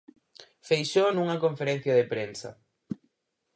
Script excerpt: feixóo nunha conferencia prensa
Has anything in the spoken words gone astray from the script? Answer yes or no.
yes